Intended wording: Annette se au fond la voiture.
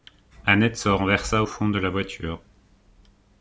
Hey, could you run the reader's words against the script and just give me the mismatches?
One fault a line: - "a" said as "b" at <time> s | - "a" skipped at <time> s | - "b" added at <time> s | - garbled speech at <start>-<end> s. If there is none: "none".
- "renversa" added at 0.9 s
- "de" added at 1.7 s